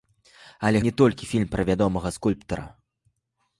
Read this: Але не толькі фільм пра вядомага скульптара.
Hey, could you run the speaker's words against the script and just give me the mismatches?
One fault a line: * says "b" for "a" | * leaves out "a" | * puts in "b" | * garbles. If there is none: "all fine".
all fine